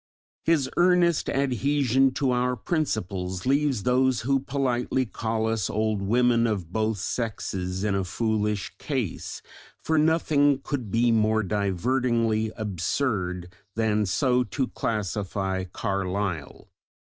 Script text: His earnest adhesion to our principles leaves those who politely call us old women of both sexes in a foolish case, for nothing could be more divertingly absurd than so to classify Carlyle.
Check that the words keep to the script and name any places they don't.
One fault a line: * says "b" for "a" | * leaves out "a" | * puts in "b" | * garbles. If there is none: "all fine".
all fine